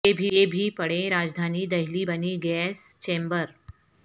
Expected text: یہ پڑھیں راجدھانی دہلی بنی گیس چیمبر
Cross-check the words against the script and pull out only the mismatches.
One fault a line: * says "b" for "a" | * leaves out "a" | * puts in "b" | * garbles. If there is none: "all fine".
* puts in "بھی"